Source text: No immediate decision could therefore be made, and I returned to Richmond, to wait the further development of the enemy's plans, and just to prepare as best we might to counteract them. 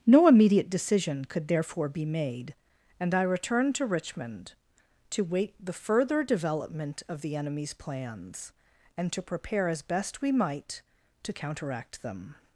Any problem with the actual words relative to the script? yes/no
yes